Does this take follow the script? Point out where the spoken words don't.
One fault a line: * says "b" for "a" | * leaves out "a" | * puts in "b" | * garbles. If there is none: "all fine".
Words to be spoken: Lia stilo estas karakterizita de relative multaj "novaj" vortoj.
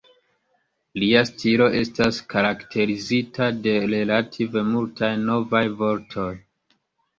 all fine